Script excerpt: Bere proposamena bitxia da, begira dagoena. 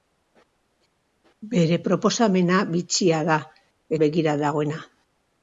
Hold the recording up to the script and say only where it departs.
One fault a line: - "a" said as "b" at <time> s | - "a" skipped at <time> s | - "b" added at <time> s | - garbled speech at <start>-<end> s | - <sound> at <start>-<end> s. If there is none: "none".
none